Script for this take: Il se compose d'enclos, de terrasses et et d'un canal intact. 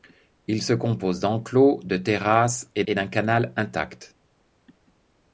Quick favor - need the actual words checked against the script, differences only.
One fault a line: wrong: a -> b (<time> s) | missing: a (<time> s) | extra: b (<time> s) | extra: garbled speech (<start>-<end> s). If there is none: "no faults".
no faults